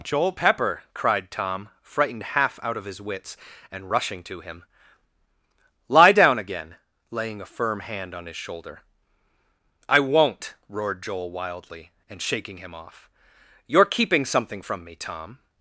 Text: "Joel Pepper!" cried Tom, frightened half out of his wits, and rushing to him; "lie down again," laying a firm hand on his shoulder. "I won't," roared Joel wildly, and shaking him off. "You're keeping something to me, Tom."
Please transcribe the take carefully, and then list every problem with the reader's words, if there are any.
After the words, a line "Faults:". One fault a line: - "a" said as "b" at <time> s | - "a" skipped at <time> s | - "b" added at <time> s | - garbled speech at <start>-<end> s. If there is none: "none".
"Joel Pepper!" cried Tom, frightened half out of his wits, and rushing to him; "lie down again," laying a firm hand on his shoulder. "I won't," roared Joel wildly, and shaking him off. "You're keeping something from me, Tom."
Faults:
- "to" said as "from" at 14.6 s